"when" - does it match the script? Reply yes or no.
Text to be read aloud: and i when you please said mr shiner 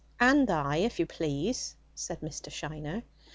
no